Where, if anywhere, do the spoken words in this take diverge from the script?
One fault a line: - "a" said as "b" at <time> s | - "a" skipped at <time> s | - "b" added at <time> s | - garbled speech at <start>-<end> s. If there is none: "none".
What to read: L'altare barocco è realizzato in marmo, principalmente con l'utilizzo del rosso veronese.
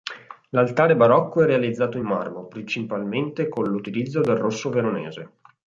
none